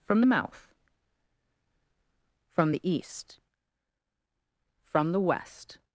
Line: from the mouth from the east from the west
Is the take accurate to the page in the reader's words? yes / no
yes